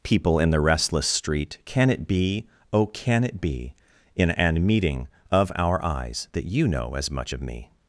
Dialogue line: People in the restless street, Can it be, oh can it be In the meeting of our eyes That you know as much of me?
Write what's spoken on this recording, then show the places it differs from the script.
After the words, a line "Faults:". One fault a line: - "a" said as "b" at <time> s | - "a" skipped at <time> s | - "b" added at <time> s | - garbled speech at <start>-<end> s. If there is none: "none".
People in the restless street, Can it be, oh can it be In an meeting of our eyes That you know as much of me?
Faults:
- "the" said as "an" at 4.3 s